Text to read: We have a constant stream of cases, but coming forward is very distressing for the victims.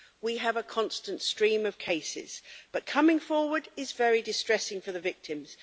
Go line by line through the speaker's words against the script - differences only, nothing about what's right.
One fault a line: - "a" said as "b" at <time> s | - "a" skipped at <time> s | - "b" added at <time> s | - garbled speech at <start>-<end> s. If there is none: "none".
none